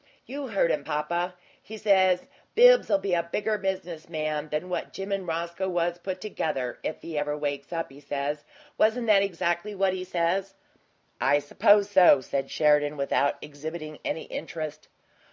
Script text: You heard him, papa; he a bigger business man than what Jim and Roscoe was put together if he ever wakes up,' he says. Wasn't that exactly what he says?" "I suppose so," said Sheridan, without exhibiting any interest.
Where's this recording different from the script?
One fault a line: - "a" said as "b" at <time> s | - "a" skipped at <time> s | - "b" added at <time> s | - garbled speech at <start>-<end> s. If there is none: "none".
- "says Bibbs'll be" added at 1.8 s